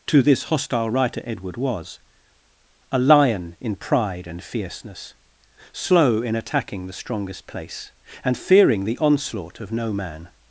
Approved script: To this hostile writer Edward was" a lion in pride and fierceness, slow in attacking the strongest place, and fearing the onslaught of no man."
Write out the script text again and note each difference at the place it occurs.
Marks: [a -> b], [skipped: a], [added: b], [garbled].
To this hostile writer Edward was" a lion in pride and fierceness, slow in attacking the strongest place, and fearing the onslaught of no man."